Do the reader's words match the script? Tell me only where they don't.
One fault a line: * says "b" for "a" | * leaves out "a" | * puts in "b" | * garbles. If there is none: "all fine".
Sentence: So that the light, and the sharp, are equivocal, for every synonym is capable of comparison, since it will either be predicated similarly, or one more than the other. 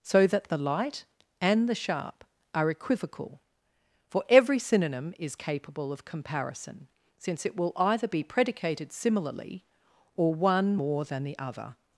all fine